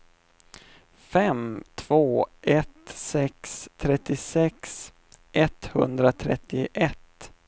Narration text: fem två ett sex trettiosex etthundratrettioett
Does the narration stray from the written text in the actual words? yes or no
no